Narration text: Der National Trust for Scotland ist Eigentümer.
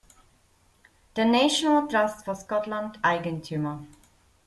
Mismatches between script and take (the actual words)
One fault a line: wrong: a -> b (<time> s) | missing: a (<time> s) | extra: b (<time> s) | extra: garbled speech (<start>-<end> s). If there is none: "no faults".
missing: ist (3.0 s)